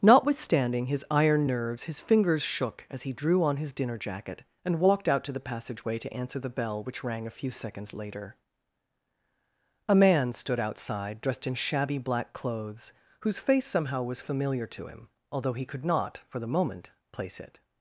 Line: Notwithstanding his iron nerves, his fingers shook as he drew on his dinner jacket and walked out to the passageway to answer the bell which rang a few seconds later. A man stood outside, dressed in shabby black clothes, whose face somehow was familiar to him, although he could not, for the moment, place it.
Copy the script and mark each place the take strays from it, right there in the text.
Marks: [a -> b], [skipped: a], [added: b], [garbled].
Notwithstanding his iron nerves, his fingers shook as he drew on his dinner jacket and walked out to the passageway to answer the bell which rang a few seconds later. A man stood outside, dressed in shabby black clothes, whose face somehow was familiar to him, although he could not, for the moment, place it.